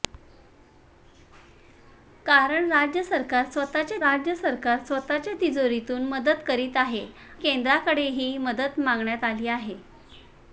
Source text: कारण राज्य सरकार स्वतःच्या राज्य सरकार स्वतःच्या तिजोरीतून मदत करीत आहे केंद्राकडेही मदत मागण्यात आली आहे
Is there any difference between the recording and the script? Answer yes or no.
no